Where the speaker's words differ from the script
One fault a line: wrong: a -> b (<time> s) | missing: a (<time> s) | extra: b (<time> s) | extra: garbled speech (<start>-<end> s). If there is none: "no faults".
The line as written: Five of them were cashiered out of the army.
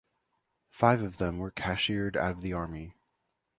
no faults